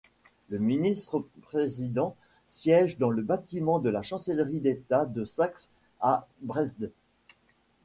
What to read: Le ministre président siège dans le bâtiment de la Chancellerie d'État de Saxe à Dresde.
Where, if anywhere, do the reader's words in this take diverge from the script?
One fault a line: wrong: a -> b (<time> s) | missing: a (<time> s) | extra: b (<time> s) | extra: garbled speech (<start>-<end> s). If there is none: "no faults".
no faults